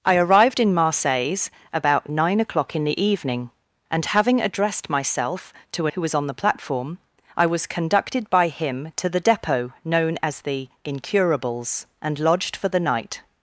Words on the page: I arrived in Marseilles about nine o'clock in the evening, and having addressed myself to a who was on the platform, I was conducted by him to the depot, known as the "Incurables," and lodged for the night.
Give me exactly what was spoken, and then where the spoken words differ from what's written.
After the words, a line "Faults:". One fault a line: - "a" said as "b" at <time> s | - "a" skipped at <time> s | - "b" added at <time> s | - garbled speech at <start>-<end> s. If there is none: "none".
I arrived in Marseilles about nine o'clock in the evening, and having addressed myself to a who was on the platform, I was conducted by him to the depot, known as the "Incurables," and lodged for the night.
Faults:
none